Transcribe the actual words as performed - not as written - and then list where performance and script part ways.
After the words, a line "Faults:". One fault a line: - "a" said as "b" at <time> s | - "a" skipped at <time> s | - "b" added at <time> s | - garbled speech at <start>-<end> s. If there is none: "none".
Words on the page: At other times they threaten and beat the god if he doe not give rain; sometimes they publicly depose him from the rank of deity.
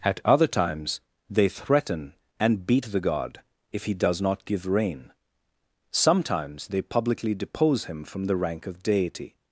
At other times they threaten and beat the god if he does not give rain; sometimes they publicly depose him from the rank of deity.
Faults:
- "doe" said as "does" at 3.9 s